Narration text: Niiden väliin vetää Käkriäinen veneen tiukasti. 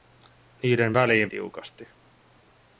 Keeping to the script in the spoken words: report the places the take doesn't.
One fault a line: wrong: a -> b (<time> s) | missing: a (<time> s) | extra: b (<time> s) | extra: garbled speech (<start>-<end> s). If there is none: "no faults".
missing: vetää Käkriäinen veneen (1.3 s)